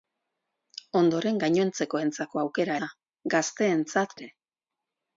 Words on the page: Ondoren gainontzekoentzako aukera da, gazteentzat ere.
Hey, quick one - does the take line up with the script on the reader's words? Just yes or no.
yes